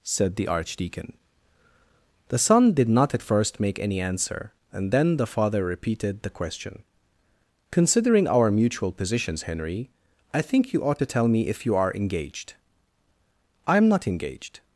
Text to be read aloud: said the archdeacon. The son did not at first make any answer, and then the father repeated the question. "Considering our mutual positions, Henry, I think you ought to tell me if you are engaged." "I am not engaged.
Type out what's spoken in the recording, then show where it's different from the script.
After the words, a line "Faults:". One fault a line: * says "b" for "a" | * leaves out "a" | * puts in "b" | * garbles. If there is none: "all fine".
said the archdeacon. The son did not at first make any answer, and then the father repeated the question. "Considering our mutual positions, Henry, I think you ought to tell me if you are engaged." "I am not engaged.
Faults:
all fine